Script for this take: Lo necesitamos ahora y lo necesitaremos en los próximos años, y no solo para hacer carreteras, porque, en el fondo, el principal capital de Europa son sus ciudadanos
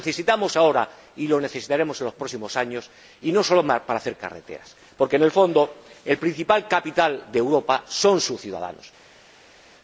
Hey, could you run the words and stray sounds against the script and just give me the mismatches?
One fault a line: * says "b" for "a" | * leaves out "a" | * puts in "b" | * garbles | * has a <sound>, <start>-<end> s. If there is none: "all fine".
all fine